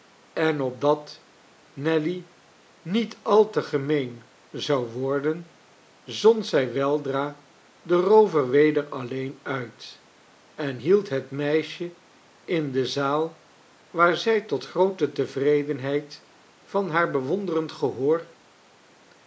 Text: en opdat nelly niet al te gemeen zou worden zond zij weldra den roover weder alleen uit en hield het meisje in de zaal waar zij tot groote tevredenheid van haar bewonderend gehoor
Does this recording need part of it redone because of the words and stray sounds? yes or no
no